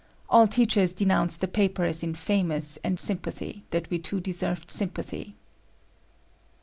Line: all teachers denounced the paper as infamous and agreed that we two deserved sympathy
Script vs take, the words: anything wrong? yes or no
yes